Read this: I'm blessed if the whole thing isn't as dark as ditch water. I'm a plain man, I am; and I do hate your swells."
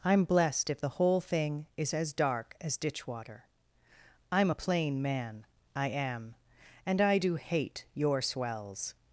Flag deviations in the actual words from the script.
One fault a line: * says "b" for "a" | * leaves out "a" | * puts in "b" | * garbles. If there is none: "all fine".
* says "is" for "isn't"